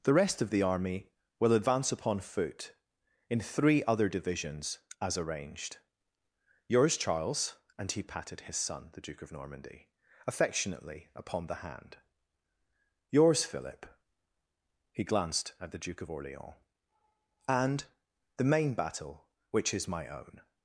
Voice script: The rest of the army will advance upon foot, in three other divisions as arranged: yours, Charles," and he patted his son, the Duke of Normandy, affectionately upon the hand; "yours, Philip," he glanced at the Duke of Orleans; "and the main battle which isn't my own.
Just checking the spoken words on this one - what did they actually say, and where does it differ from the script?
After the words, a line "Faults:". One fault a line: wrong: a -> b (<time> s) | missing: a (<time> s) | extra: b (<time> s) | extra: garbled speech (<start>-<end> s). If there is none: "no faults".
The rest of the army will advance upon foot, in three other divisions as arranged: yours, Charles," and he patted his son, the Duke of Normandy, affectionately upon the hand; "yours, Philip," he glanced at the Duke of Orleans; "and the main battle which is my own.
Faults:
wrong: isn't -> is (19.7 s)